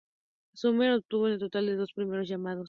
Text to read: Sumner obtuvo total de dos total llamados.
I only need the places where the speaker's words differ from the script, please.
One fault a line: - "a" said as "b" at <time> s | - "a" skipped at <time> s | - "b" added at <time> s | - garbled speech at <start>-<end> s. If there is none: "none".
- "un" added at 1.2 s
- "total" said as "primeros" at 1.9 s